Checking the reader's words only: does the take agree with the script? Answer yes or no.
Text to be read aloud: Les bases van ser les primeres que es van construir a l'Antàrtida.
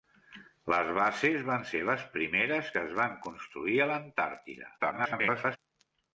no